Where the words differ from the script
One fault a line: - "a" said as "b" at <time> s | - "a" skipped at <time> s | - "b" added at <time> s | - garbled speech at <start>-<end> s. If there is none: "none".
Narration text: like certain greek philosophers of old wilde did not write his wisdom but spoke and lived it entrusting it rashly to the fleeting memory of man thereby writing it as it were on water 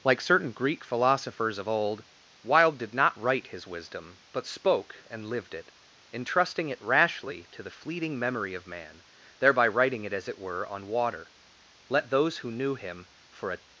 - "let those who knew him for a" added at 11.9 s